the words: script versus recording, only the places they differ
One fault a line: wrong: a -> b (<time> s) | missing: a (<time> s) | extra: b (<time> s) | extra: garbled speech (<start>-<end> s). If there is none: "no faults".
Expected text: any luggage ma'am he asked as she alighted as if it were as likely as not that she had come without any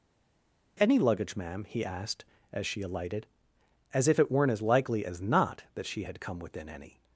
wrong: were -> weren't (4.3 s)
wrong: without -> within (6.4 s)